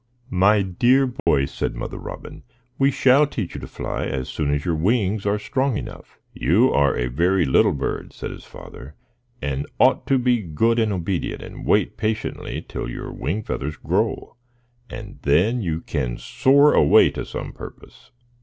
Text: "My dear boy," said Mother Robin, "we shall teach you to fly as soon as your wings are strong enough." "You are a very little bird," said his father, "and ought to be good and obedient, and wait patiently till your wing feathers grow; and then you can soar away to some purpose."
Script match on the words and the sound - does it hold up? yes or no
no